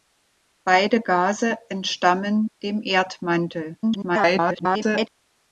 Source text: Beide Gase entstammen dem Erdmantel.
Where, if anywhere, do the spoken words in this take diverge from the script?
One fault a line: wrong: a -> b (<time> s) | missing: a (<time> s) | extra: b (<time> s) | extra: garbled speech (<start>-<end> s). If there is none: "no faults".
extra: garbled speech (3.8-5.1 s)